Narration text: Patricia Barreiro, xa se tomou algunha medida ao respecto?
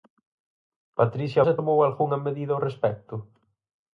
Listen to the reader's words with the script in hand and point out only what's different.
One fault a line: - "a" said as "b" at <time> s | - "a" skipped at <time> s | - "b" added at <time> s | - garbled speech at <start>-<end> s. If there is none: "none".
- "Barreiro xa" skipped at 1.4 s